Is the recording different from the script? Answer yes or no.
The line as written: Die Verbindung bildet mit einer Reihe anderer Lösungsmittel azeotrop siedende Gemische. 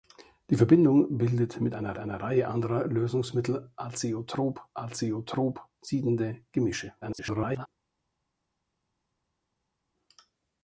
yes